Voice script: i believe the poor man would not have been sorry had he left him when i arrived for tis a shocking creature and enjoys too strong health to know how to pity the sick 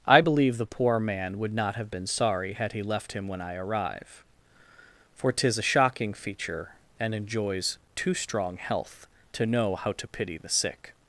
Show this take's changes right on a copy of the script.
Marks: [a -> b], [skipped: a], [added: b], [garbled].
i believe the poor man would not have been sorry had he left him when i [arrived -> arrive] for tis a shocking [creature -> feature] and enjoys too strong health to know how to pity the sick